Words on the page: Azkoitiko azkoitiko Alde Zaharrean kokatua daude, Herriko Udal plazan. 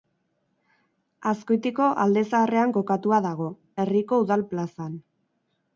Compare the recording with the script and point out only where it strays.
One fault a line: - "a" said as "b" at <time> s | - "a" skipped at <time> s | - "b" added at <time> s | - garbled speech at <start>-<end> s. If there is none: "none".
- "azkoitiko" skipped at 1.9 s
- "daude" said as "dago" at 3.3 s